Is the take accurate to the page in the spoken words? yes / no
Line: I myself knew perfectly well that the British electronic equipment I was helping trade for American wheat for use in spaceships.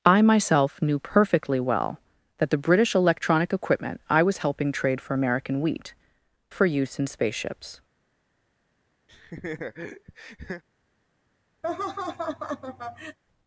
yes